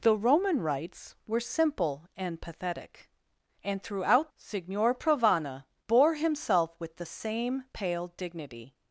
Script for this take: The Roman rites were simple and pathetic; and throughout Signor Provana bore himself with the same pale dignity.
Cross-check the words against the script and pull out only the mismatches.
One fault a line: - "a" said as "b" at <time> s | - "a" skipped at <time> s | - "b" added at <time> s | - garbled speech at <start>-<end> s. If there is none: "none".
none